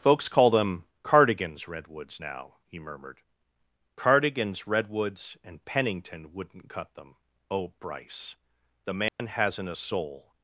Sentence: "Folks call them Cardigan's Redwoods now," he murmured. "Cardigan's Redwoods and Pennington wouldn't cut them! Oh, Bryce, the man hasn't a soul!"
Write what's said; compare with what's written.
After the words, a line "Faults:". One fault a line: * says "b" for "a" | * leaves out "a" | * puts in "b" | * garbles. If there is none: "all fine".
"Folks call them Cardigan's Redwoods now," he murmured. "Cardigan's Redwoods and Pennington wouldn't cut them! Oh, Bryce, the man hasn't a soul!"
Faults:
all fine